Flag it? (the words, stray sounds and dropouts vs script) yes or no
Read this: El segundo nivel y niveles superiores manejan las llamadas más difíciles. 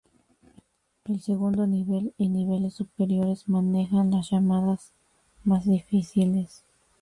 no